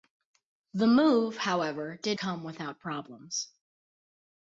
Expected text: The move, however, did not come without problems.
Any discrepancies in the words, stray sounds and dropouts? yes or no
yes